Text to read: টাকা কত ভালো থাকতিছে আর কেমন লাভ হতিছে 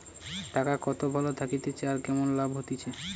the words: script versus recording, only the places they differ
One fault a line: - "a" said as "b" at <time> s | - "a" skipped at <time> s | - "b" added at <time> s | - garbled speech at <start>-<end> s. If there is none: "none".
none